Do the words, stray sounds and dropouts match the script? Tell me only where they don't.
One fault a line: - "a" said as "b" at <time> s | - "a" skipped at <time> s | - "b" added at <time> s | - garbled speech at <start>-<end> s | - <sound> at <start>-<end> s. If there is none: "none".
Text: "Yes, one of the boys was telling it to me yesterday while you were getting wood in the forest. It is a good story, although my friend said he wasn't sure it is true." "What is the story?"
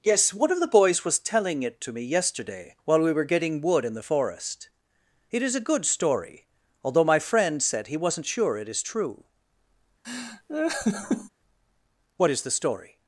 - "you" said as "we" at 3.0 s
- laugh at 10.0-11.3 s